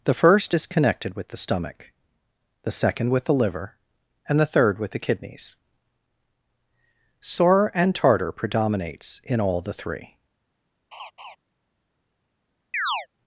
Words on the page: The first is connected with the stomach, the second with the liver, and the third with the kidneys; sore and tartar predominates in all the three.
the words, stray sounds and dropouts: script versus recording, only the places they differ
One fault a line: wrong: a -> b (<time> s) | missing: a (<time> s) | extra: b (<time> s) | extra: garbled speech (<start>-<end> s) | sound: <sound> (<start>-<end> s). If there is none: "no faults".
sound: laugh (10.9-11.4 s)
sound: chirp (12.7-13.1 s)